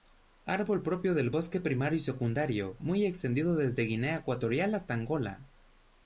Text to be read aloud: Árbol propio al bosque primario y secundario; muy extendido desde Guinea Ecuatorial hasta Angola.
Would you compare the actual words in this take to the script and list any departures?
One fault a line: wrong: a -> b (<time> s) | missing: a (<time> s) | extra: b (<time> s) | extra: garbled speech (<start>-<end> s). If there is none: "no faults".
wrong: al -> del (1.1 s)